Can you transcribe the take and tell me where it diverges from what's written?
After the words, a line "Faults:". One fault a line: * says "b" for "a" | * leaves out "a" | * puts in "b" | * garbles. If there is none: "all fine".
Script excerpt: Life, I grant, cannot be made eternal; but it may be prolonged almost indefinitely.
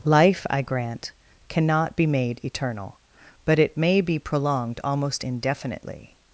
Life, I grant, cannot be made eternal; but it may be prolonged almost indefinitely.
Faults:
all fine